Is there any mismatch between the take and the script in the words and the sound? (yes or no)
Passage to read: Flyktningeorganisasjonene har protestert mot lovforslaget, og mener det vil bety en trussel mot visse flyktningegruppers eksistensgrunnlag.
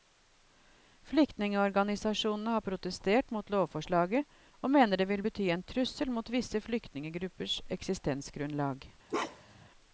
yes